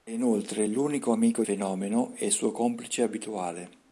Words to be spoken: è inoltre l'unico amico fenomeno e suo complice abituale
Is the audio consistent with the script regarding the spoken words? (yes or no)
yes